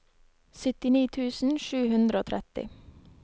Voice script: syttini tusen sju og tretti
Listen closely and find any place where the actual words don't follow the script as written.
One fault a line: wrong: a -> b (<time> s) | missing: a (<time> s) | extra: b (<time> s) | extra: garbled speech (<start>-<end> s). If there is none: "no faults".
extra: hundre (1.9 s)